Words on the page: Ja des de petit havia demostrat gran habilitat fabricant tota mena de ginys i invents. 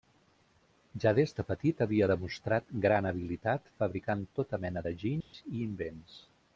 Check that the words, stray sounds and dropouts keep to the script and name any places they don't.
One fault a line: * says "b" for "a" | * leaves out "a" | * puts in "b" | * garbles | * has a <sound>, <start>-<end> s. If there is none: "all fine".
* has a dropout, 5.2-5.3 s